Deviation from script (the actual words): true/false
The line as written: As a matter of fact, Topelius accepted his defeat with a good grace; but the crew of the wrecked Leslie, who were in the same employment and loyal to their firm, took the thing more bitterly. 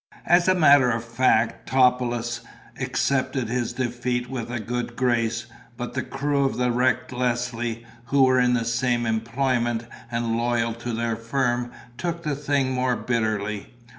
false